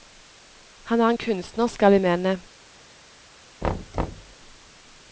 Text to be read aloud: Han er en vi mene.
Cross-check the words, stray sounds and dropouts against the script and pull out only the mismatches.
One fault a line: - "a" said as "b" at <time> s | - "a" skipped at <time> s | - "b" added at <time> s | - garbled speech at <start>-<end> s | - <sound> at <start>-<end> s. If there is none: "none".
- "kunstner skal" added at 1.2 s
- thud at 3.6-4.4 s